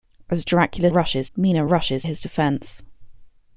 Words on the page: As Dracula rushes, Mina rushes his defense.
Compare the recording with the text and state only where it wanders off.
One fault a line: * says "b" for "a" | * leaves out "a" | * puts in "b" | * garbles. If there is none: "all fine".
all fine